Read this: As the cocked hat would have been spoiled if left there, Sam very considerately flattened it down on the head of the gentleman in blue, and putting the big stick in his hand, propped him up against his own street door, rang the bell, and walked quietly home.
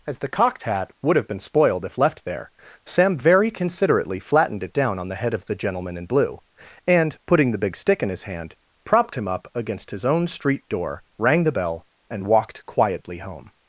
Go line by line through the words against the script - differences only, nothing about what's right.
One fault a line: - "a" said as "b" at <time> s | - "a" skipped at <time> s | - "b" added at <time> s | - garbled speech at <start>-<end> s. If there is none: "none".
none